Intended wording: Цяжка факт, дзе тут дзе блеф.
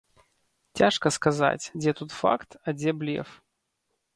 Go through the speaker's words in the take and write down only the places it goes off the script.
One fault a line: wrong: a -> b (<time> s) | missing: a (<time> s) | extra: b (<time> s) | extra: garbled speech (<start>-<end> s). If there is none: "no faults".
wrong: факт -> сказаць (1.2 s)
extra: факт а (2.2 s)